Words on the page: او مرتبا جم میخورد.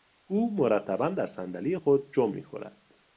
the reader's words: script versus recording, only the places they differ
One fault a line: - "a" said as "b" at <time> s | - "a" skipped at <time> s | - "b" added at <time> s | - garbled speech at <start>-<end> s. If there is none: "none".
- "در صندلی خود" added at 1.1 s